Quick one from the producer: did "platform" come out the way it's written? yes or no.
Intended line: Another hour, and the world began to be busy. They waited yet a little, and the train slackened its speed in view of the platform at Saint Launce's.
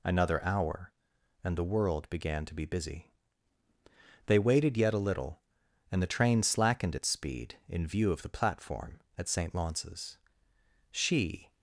yes